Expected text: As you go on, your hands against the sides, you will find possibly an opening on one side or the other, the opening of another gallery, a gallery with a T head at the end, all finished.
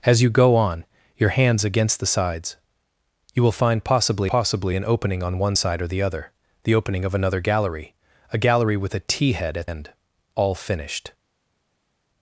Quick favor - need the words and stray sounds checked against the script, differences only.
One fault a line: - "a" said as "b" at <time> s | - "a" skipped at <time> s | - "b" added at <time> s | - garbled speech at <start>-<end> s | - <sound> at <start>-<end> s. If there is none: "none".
- "possibly" added at 4.3 s
- "the" skipped at 9.7 s